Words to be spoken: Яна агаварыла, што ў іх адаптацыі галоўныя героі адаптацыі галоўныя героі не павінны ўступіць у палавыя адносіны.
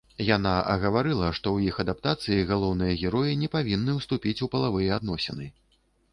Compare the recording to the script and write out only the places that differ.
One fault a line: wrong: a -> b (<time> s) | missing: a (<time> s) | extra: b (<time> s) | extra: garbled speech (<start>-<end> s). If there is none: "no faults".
missing: адаптацыі галоўныя героі (3.4 s)